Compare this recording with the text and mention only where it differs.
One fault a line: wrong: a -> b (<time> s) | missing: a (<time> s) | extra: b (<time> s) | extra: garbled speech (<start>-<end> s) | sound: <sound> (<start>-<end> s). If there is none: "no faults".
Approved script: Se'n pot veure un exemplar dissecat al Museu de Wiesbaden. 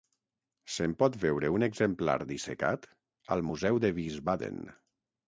no faults